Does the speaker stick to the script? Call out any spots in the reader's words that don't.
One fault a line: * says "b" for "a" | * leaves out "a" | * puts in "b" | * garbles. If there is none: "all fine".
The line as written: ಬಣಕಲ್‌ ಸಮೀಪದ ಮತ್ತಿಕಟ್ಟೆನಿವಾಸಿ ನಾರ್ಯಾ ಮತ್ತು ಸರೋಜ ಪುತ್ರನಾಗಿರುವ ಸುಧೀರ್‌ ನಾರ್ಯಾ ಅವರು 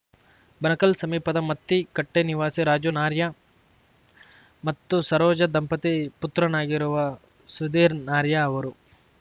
* puts in "ರಾಜು"
* puts in "ದಂಪತಿ"